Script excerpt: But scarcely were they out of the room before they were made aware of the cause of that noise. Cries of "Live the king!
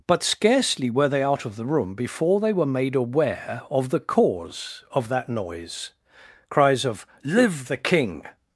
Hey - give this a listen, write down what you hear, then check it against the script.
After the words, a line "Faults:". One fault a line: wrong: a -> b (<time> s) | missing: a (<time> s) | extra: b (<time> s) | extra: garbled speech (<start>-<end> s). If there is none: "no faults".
But scarcely were they out of the room before they were made aware of the cause of that noise. Cries of "Live the king!
Faults:
no faults